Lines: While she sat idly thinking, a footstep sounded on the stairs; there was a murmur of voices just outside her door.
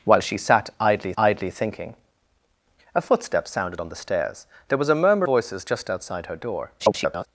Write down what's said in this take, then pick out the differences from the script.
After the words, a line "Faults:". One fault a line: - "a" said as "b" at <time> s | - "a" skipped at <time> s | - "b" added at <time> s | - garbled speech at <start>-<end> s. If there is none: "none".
While she sat idly idly thinking, a footstep sounded on the stairs; there was a murmur voices just outside her door. [garbled]
Faults:
- "idly" added at 1.2 s
- "of" skipped at 5.3 s
- garbled speech at 6.8-7.3 s